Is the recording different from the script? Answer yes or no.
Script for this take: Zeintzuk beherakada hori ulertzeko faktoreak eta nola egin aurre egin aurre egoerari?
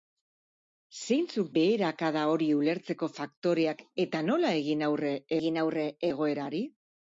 no